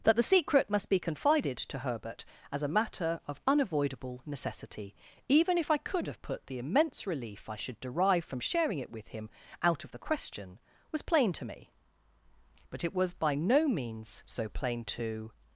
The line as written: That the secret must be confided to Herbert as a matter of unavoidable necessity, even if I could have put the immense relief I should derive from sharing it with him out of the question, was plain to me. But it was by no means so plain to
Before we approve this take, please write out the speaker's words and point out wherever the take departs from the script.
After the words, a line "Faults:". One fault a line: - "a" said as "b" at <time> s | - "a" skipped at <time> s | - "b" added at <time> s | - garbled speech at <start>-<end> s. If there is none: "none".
That the secret must be confided to Herbert as a matter of unavoidable necessity, even if I could have put the immense relief I should derive from sharing it with him out of the question, was plain to me. But it was by no means so plain to
Faults:
none